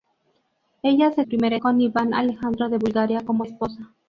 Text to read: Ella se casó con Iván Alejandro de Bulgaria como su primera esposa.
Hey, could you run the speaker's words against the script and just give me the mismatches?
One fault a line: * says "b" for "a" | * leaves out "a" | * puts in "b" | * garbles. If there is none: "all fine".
* says "primera" for "casó"
* leaves out "su primera"